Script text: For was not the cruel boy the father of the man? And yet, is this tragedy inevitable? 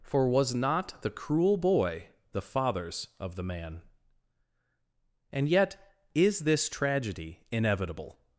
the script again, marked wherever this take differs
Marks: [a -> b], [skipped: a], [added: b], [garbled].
For was not the cruel boy the [father -> fathers] of the man? And yet, is this tragedy inevitable?